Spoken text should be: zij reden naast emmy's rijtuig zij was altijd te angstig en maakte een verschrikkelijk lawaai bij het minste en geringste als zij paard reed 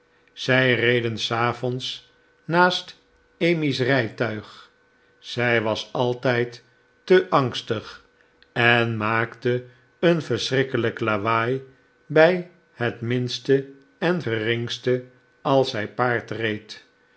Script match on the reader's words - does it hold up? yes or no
no